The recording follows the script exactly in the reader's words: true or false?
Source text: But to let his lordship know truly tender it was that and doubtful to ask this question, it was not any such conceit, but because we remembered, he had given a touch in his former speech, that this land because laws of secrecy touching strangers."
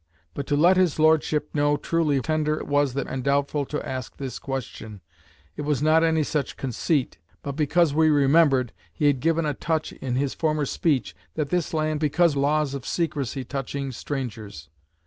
true